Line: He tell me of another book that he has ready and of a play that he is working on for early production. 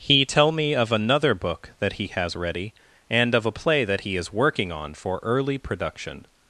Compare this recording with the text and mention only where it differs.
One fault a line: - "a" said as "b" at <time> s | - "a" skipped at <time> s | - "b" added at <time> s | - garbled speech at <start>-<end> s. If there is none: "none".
none